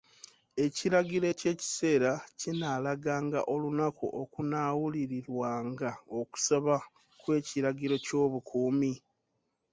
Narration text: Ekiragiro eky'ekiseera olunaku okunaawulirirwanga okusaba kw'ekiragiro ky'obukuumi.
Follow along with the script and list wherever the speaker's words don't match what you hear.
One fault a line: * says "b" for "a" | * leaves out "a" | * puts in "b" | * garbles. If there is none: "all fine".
* puts in "kinaalaganga"